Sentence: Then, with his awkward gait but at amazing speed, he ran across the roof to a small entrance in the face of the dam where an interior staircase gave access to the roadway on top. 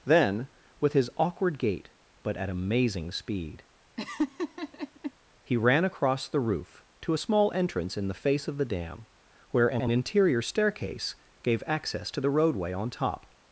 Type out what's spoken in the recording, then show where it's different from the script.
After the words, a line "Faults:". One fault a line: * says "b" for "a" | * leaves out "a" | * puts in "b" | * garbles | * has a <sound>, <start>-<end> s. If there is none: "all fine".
Then, with his awkward gait but at amazing speed, he ran across the roof to a small entrance in the face of the dam where an an interior staircase gave access to the roadway on top.
Faults:
* has a laugh, 4.0-5.1 s
* puts in "an"